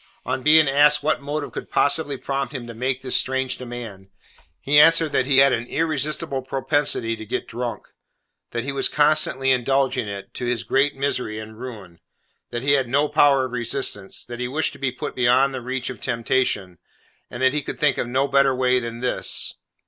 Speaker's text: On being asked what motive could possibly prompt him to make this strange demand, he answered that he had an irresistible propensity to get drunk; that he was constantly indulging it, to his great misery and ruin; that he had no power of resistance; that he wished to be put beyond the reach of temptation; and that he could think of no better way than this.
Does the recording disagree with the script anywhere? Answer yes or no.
no